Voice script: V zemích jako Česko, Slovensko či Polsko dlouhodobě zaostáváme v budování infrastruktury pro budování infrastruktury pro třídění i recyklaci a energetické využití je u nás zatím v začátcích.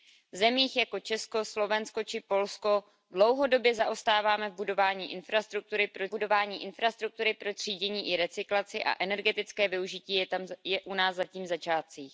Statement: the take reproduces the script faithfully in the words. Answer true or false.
true